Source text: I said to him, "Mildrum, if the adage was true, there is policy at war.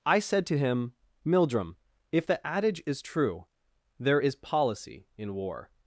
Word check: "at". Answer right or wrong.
wrong